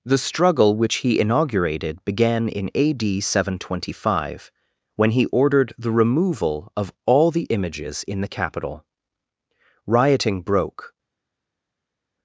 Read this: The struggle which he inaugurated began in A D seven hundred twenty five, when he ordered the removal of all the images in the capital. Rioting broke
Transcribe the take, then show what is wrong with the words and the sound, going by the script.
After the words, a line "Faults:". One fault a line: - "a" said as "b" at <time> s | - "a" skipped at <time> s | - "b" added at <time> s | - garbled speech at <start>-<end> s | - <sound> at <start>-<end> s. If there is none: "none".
The struggle which he inaugurated began in A D seven hundred twenty five, when he ordered the removal of all the images in the capital. Rioting broke
Faults:
none